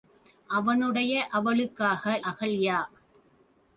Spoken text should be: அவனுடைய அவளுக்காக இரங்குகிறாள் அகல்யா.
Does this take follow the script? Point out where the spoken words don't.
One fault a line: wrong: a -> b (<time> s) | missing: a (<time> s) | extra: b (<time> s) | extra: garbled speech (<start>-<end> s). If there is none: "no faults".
missing: இரங்குகிறாள் (2.2 s)